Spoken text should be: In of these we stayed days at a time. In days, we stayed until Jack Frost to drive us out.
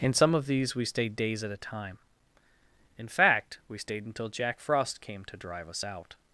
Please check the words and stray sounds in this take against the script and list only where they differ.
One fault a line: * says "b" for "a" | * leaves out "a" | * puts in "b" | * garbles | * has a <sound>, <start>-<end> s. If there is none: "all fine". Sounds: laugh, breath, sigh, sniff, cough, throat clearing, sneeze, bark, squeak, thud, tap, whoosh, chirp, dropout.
* puts in "some"
* says "fact" for "days"
* puts in "came"